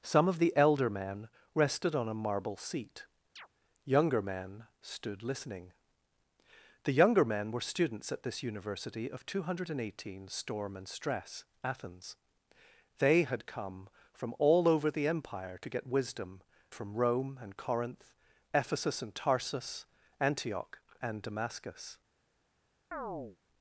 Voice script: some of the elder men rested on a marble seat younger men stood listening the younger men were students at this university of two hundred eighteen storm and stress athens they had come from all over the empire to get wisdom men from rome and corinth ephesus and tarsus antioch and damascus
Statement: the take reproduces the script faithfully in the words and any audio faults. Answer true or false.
false